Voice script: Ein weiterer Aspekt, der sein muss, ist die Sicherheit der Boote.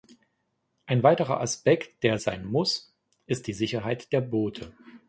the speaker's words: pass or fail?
pass